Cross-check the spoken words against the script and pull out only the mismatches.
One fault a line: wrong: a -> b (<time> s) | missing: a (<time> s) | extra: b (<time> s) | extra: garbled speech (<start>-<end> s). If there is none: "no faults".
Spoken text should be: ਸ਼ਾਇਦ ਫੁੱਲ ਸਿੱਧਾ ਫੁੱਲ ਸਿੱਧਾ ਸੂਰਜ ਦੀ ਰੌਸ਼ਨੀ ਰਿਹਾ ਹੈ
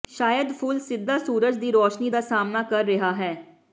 missing: ਫੁੱਲ ਸਿੱਧਾ (1.2 s)
extra: ਦਾ ਸਾਹਮਣਾ ਕਰ (2.1 s)